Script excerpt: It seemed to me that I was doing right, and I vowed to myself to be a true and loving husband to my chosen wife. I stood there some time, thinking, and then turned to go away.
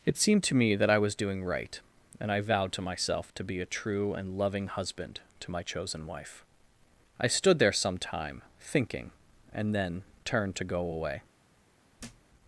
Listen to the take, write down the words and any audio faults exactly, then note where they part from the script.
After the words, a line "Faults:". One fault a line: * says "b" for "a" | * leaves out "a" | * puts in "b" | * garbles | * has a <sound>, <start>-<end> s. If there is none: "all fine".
It seemed to me that I was doing right, and I vowed to myself to be a true and loving husband to my chosen wife. I stood there some time, thinking, and then turned to go away.
Faults:
* has a thud, 12.0-12.3 s